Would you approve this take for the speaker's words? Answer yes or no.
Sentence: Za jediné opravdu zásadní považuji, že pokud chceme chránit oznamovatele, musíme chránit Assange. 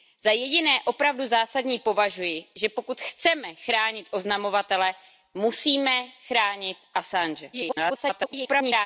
no